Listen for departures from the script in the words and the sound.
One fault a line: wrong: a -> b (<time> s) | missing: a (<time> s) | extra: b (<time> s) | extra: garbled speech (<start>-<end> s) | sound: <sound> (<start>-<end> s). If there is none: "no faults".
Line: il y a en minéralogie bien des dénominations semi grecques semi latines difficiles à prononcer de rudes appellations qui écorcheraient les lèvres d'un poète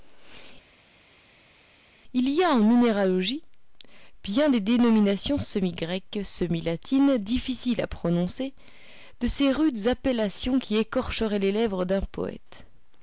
extra: ces (9.3 s)